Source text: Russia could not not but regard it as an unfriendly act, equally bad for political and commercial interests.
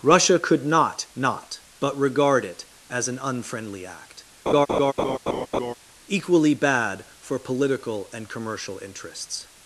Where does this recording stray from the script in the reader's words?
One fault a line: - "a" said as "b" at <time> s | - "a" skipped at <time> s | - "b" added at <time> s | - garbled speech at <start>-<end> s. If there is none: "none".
none